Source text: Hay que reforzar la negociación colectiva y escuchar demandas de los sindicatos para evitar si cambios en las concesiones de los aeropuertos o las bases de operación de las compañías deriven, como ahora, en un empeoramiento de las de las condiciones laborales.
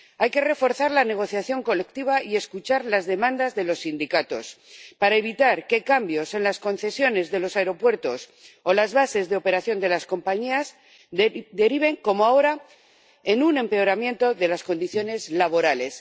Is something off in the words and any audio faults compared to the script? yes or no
yes